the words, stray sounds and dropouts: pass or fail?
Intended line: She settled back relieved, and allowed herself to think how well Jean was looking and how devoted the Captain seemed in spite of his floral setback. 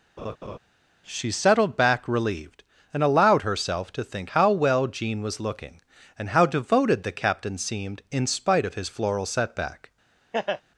fail